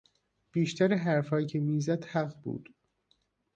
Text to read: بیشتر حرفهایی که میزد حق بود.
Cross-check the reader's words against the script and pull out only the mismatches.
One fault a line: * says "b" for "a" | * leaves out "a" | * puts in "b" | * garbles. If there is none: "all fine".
all fine